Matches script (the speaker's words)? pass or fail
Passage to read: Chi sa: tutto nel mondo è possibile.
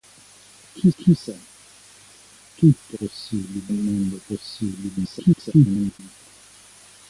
fail